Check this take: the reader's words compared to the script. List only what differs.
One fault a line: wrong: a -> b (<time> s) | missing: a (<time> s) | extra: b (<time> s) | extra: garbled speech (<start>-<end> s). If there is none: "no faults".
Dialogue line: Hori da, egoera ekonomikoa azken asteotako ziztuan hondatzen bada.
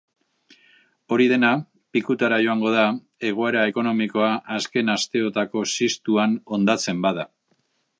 extra: dena pikutara joango (1.3 s)